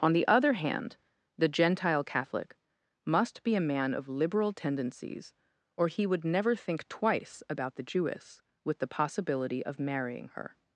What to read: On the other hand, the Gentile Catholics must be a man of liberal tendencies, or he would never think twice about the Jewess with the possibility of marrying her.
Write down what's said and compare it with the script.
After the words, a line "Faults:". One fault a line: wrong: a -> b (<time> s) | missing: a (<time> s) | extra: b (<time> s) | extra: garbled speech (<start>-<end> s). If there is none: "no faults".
On the other hand, the Gentile Catholic must be a man of liberal tendencies, or he would never think twice about the Jewess with the possibility of marrying her.
Faults:
wrong: Catholics -> Catholic (2.0 s)